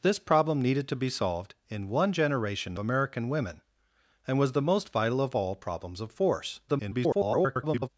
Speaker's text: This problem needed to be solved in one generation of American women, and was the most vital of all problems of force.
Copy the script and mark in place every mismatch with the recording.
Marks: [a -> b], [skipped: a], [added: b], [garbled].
This problem needed to be solved in one generation [skipped: of] American women, and was the most vital of all problems of force. [garbled]